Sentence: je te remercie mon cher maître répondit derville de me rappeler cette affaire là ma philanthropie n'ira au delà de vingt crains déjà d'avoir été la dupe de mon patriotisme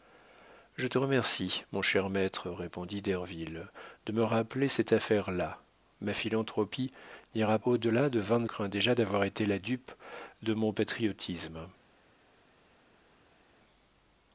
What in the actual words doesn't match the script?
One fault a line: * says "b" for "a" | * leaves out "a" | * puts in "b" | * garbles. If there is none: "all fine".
all fine